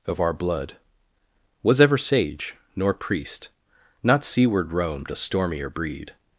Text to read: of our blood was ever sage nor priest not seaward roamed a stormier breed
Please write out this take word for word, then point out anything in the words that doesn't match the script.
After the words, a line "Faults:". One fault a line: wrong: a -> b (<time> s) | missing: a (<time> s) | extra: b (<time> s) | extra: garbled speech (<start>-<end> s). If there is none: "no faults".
of our blood was ever sage nor priest not seaward roamed a stormier breed
Faults:
no faults